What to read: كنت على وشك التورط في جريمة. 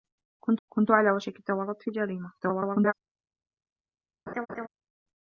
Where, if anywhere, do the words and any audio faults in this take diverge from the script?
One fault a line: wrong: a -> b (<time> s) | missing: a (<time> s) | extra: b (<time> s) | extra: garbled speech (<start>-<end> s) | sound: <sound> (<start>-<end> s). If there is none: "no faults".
extra: كنت (0.7 s)
extra: garbled speech (2.4-2.9 s)
sound: laugh (4.3-4.7 s)